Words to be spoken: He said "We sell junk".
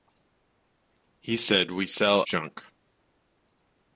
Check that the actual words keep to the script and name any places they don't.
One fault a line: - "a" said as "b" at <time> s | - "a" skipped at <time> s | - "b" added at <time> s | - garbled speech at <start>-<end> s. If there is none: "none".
none